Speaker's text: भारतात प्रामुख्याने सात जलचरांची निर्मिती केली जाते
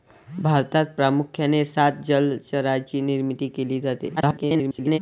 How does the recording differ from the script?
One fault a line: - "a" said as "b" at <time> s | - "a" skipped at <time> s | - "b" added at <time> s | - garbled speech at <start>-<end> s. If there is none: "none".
- garbled speech at 4.2-5.0 s